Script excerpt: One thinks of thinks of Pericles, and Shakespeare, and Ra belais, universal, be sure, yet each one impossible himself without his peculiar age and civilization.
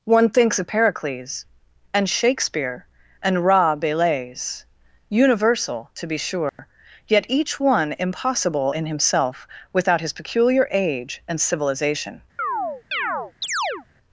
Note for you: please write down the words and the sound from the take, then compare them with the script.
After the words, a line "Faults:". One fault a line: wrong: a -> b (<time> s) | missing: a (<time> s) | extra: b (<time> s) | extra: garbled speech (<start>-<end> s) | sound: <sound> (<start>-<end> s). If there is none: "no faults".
One thinks of Pericles, and Shakespeare, and Ra belais, universal, to be sure, yet each one impossible in himself without his peculiar age and civilization.
Faults:
missing: thinks of (0.7 s)
extra: to (5.9 s)
sound: dropout (6.5-6.6 s)
extra: in (8.7 s)
sound: chirp (12.4-13.9 s)